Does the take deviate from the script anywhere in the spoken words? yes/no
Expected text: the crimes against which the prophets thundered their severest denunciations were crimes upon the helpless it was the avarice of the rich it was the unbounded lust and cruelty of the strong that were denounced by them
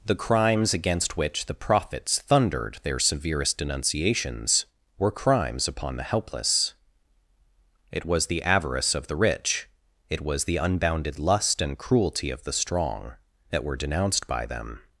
no